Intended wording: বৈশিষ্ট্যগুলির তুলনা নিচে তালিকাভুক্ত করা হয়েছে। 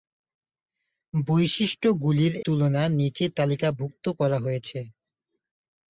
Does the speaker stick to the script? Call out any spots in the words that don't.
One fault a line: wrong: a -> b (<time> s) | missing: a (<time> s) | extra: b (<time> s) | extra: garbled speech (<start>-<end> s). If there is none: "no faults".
no faults